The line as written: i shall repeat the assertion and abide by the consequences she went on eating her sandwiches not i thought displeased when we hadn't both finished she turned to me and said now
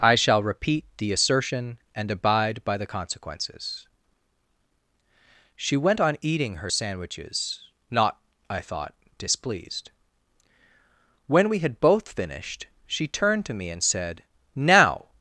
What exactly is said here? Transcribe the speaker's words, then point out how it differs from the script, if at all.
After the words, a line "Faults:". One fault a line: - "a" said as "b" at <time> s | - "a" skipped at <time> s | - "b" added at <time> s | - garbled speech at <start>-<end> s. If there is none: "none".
i shall repeat the assertion and abide by the consequences she went on eating her sandwiches not i thought displeased when we had both finished she turned to me and said now
Faults:
- "hadn't" said as "had" at 11.6 s